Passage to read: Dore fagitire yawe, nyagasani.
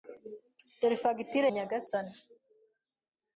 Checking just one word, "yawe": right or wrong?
wrong